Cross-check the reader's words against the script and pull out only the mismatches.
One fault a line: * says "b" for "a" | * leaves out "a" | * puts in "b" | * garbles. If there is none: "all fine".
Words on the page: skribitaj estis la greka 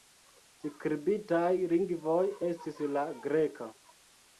* puts in "lingvoj"